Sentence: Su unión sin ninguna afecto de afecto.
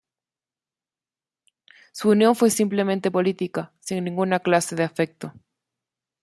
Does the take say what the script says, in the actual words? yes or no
no